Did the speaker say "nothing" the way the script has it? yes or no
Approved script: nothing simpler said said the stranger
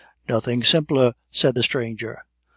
yes